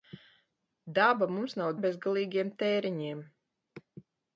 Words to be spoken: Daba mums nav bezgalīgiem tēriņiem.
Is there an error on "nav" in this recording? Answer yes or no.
no